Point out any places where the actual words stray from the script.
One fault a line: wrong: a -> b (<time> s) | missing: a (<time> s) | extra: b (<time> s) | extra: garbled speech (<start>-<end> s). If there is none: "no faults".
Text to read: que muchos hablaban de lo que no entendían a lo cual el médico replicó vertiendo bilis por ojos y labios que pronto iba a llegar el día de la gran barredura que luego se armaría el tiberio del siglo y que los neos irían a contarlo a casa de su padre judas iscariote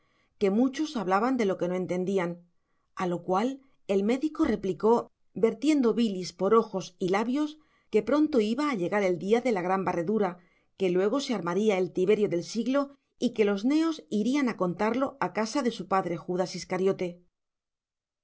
no faults